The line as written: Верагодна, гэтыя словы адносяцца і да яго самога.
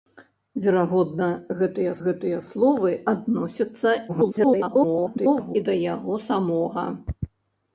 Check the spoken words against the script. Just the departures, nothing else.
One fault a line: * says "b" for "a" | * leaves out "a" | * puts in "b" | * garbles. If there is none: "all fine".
* puts in "гэтыя"
* garbles